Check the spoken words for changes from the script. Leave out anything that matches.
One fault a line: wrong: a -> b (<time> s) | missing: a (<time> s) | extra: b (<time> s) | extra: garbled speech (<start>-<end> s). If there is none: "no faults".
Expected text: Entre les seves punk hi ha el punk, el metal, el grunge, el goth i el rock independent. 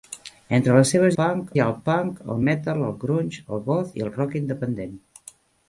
no faults